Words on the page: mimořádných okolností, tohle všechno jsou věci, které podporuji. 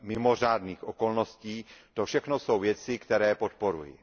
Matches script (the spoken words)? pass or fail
fail